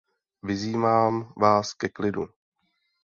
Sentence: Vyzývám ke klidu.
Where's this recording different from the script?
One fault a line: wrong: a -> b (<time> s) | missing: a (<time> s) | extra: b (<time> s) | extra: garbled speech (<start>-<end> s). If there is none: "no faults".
extra: vás (1.4 s)